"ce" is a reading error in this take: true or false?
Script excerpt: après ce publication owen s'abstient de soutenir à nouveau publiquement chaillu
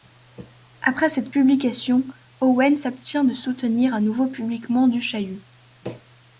true